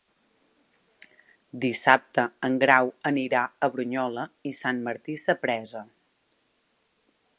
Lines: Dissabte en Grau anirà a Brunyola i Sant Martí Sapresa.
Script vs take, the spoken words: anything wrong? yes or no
no